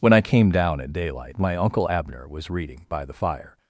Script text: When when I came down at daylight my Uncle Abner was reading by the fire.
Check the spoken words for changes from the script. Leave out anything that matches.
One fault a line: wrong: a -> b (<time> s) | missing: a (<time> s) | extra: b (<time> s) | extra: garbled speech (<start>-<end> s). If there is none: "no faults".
missing: when (0.1 s)